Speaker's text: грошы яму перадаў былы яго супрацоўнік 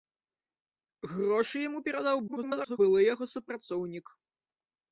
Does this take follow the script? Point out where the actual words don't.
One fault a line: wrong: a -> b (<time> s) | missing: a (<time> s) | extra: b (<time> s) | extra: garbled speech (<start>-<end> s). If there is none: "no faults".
extra: garbled speech (2.3-2.8 s)